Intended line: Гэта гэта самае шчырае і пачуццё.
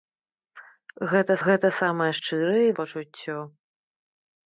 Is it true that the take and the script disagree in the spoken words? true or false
false